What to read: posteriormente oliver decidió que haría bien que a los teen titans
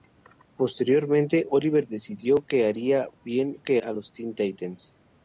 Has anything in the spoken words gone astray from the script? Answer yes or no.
no